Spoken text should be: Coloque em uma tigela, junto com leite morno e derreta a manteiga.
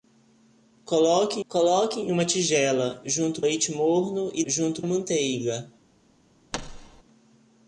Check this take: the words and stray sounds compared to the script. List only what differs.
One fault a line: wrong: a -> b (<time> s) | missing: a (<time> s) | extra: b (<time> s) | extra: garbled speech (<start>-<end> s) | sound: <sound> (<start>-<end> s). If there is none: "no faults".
extra: coloque (1.5 s)
missing: com (3.4 s)
wrong: derreta -> junto (4.5 s)
sound: thud (6.5-7.0 s)